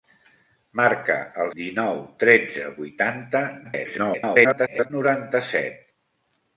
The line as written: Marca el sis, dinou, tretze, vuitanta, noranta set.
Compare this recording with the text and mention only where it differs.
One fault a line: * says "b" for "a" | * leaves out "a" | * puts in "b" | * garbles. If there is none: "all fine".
* leaves out "sis"
* garbles